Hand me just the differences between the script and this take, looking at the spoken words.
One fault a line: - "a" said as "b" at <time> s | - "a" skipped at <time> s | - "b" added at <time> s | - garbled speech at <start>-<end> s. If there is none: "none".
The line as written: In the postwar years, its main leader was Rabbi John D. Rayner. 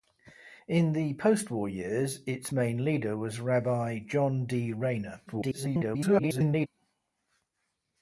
- garbled speech at 5.3-6.7 s